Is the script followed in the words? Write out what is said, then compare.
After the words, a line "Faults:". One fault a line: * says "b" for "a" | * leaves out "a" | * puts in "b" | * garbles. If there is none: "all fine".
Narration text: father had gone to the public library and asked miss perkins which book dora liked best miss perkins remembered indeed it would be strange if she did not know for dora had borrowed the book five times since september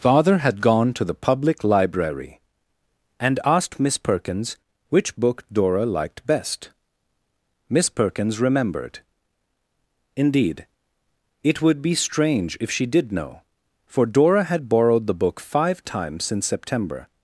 father had gone to the public library and asked miss perkins which book dora liked best miss perkins remembered indeed it would be strange if she did know for dora had borrowed the book five times since september
Faults:
* leaves out "not"